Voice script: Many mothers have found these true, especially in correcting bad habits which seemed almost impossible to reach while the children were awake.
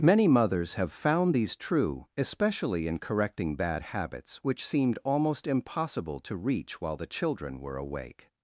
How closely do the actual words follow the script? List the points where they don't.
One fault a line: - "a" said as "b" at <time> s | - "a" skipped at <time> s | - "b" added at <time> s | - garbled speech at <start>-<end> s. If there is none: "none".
none